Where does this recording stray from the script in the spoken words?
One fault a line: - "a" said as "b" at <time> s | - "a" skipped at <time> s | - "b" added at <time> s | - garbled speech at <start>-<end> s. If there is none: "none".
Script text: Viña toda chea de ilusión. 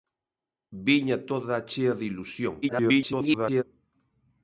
- garbled speech at 2.6-3.6 s